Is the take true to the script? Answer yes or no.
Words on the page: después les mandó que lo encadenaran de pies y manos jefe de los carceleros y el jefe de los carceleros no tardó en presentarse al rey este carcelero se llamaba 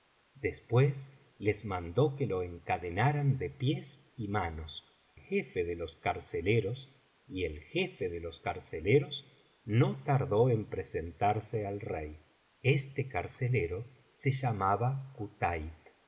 yes